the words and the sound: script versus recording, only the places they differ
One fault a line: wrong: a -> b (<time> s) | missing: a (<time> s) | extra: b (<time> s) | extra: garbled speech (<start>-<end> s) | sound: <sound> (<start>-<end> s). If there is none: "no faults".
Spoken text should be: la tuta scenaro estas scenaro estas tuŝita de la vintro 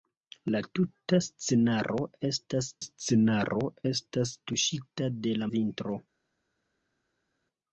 no faults